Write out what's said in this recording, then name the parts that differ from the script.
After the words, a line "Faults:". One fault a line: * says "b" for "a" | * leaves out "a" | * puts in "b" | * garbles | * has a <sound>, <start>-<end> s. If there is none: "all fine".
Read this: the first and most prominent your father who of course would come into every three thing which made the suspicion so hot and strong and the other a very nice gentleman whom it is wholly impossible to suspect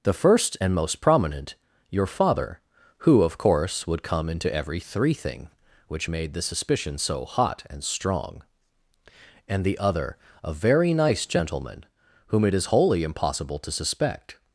the first and most prominent your father who of course would come into every three thing which made the suspicion so hot and strong and the other a very nice gentleman whom it is wholly impossible to suspect
Faults:
all fine